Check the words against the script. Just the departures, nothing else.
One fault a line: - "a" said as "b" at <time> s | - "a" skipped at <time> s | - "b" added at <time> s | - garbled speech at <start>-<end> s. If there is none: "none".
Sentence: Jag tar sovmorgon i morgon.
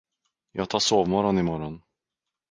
none